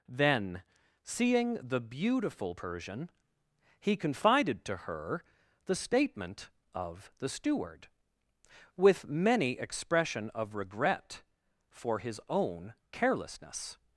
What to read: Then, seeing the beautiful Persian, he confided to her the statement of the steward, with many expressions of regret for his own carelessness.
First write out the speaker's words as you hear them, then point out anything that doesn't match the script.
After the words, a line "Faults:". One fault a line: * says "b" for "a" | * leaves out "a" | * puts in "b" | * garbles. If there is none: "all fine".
Then, seeing the beautiful Persian, he confided to her the statement of the steward, with many expression of regret for his own carelessness.
Faults:
* says "expression" for "expressions"